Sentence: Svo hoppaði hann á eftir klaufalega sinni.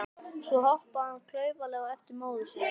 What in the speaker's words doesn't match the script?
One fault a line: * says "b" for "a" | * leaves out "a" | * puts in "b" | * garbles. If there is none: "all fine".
* puts in "klaufalega"
* says "móður" for "klaufalega"